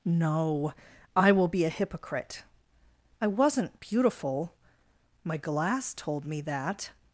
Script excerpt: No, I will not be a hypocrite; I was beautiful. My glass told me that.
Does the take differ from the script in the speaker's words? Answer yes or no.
yes